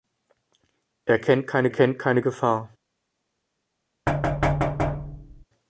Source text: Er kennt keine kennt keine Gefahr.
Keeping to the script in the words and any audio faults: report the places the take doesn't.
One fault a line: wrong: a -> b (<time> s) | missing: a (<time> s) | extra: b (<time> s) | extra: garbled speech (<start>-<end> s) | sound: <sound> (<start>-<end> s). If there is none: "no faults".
sound: thud (4.1-5.4 s)